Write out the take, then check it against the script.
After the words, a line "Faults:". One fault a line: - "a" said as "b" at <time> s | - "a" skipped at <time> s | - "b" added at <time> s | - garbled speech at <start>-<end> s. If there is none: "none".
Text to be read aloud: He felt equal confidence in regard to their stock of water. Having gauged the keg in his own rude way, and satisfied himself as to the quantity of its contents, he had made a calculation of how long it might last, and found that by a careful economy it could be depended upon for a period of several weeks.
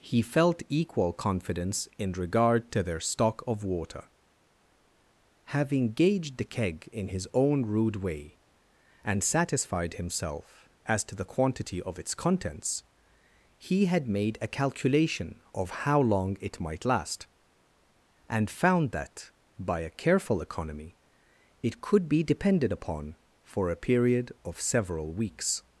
He felt equal confidence in regard to their stock of water. Having gauged the keg in his own rude way, and satisfied himself as to the quantity of its contents, he had made a calculation of how long it might last, and found that by a careful economy it could be depended upon for a period of several weeks.
Faults:
none